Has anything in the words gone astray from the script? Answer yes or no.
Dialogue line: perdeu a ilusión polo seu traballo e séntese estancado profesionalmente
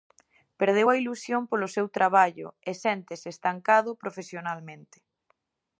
no